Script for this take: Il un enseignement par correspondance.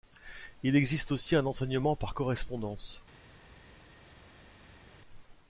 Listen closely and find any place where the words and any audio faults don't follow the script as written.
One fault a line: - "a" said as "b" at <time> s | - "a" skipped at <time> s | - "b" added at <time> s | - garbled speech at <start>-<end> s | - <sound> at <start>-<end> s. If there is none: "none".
- "existe aussi" added at 0.8 s